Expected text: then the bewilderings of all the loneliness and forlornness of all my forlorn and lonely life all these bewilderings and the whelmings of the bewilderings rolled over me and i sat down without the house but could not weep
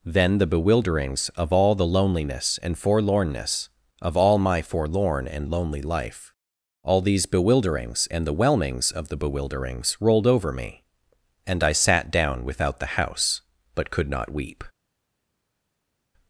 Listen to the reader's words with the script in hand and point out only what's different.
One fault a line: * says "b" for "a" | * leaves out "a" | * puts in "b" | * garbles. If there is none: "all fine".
all fine